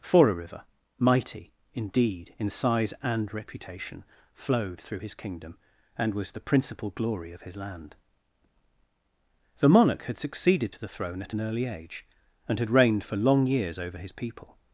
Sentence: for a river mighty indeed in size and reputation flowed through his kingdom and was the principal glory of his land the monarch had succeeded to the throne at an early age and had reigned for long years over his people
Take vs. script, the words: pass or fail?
pass